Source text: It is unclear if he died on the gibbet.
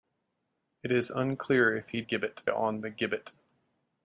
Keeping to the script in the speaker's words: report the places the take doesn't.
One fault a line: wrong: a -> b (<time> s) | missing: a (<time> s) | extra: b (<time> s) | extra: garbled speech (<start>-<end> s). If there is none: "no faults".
wrong: died -> gibbet (2.0 s)